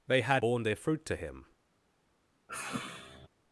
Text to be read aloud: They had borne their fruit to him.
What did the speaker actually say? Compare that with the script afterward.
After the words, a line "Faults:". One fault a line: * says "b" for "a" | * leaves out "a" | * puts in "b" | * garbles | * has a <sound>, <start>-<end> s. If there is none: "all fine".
They had borne their fruit to him.
Faults:
* has a sigh, 2.5-3.3 s